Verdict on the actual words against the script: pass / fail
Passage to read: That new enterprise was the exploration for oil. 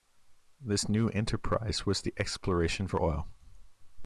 fail